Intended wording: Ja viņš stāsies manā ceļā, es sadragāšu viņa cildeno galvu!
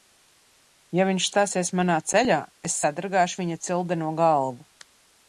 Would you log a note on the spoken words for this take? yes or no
no